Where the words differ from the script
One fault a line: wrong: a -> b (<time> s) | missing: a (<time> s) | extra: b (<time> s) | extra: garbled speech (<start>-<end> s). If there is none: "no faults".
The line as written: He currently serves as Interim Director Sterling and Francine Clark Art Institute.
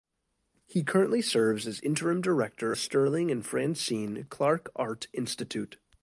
no faults